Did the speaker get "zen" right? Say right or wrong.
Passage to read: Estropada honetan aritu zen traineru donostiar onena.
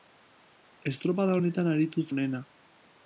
wrong